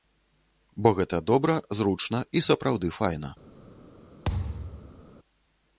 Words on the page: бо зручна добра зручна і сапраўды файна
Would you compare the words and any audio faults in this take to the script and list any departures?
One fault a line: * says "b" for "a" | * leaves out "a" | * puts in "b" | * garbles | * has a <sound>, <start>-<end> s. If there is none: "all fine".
* says "гэта" for "зручна"
* has a thud, 4.3-5.0 s